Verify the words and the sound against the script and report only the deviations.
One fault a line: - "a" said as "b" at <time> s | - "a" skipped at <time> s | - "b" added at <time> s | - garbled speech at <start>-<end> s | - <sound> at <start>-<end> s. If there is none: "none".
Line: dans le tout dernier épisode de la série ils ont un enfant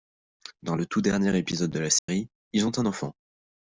- dropout at 2.0-2.1 s